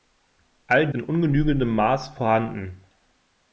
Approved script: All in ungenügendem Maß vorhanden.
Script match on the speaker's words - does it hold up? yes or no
yes